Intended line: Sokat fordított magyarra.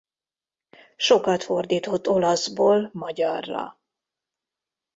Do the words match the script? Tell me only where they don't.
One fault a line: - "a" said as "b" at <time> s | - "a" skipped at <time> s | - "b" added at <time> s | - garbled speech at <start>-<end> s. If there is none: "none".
- "olaszból" added at 2.1 s